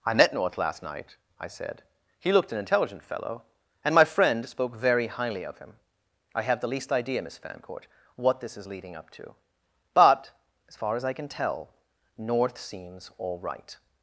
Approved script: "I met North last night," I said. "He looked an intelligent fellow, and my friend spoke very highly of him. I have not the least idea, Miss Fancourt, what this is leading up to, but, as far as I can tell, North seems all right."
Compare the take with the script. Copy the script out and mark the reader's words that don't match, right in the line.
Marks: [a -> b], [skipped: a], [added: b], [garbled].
"I met North last night," I said. "He looked an intelligent fellow, and my friend spoke very highly of him. I have [skipped: not] the least idea, Miss Fancourt, what this is leading up to, but, as far as I can tell, North seems all right."